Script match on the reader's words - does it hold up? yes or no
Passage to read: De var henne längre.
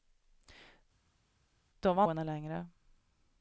yes